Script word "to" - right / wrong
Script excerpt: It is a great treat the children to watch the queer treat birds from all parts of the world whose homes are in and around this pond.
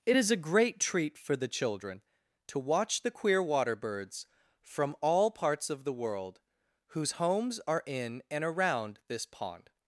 right